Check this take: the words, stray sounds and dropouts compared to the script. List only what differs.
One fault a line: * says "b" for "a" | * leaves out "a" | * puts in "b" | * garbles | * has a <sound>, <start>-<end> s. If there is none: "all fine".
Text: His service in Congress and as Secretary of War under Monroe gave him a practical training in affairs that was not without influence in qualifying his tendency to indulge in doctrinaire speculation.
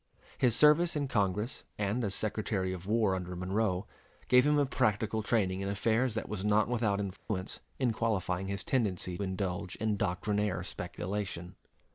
* has a dropout, 7.2-7.3 s
* leaves out "to"